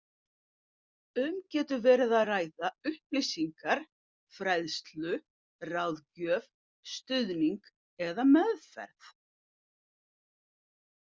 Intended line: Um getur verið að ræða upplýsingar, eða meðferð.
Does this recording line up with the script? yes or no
no